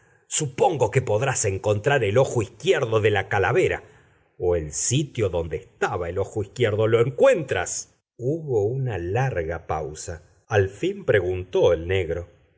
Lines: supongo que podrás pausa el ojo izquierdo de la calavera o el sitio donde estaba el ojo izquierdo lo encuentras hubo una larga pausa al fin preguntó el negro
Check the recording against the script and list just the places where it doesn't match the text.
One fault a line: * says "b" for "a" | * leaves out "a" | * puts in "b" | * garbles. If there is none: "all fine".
* says "encontrar" for "pausa"